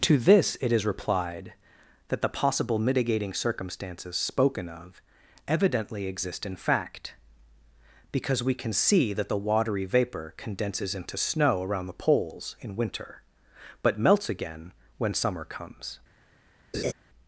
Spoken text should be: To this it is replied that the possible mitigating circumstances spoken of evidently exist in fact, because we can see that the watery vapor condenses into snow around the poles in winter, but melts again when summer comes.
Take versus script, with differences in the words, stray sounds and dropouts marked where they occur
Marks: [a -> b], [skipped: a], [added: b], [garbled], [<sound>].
To this it is replied that the possible mitigating circumstances spoken of evidently exist in fact, because we can see that the watery vapor condenses into snow around the poles in winter, but melts again when summer comes. [laugh]